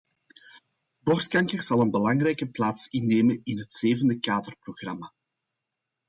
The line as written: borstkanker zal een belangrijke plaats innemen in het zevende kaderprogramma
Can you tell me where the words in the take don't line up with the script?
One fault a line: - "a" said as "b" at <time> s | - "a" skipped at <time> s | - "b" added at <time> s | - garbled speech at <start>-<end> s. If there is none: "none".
none